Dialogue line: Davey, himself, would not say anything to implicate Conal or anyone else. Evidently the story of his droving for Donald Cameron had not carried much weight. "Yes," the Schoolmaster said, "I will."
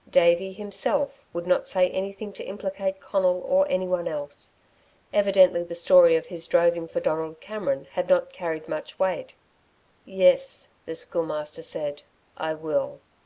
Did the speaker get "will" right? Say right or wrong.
right